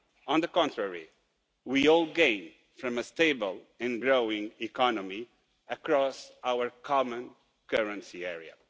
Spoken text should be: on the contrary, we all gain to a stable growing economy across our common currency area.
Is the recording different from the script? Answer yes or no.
yes